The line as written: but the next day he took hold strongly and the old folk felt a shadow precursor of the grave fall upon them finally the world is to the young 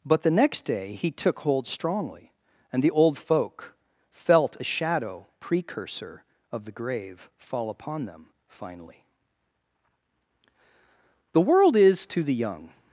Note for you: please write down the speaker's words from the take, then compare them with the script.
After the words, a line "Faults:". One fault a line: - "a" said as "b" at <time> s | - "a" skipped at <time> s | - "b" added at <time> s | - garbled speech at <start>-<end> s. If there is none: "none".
but the next day he took hold strongly and the old folk felt a shadow precursor of the grave fall upon them finally the world is to the young
Faults:
none